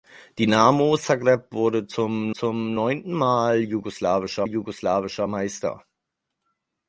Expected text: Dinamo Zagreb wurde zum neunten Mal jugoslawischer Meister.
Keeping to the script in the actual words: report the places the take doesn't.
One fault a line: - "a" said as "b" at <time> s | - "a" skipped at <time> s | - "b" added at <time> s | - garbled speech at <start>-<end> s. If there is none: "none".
- "zum" added at 2.3 s
- "jugoslawischer" added at 4.4 s